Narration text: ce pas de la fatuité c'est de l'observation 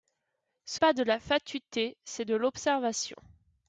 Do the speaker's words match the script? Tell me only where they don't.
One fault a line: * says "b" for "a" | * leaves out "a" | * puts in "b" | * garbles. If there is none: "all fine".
all fine